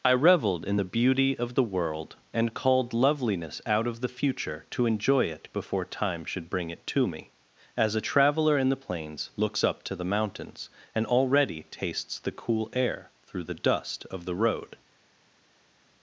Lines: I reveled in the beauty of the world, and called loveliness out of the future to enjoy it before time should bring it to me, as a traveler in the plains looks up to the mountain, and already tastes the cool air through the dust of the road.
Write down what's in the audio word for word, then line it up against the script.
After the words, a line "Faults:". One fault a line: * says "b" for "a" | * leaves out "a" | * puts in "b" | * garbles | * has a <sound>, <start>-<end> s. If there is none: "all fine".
I reveled in the beauty of the world, and called loveliness out of the future to enjoy it before time should bring it to me, as a traveler in the plains looks up to the mountains, and already tastes the cool air through the dust of the road.
Faults:
* says "mountains" for "mountain"